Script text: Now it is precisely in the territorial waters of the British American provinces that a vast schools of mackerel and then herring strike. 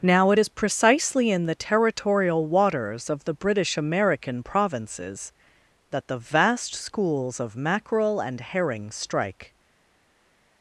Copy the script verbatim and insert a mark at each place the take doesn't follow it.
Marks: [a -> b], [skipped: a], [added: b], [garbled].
Now it is precisely in the territorial waters of the British American provinces that [a -> the] vast schools of mackerel and [skipped: then] herring strike.